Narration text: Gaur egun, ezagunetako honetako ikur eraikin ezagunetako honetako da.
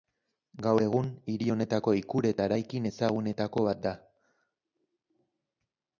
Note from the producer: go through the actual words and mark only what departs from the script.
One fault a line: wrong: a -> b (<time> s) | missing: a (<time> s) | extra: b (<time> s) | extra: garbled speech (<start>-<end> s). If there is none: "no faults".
wrong: ezagunetako -> hiri (1.3 s)
extra: eta (2.3 s)
wrong: honetako -> bat (3.7 s)